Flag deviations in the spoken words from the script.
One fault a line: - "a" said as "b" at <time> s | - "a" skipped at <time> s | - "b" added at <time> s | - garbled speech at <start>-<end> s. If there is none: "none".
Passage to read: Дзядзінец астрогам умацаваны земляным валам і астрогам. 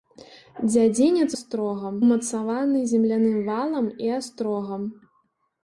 none